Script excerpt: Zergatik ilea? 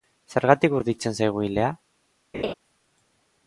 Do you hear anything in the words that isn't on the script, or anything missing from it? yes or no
yes